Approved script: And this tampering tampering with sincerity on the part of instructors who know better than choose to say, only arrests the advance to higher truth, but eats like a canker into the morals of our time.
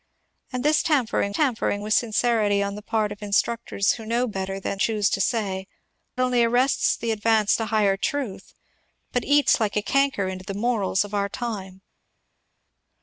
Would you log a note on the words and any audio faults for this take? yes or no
no